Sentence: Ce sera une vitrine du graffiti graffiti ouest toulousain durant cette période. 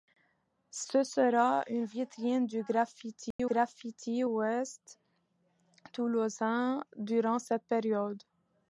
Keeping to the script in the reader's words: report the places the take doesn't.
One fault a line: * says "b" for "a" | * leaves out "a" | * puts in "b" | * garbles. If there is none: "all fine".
all fine